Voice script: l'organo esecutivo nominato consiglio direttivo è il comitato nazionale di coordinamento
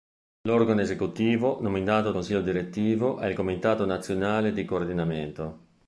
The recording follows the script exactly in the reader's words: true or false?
true